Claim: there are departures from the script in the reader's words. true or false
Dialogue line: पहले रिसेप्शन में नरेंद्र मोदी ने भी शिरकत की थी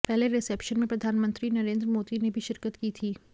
true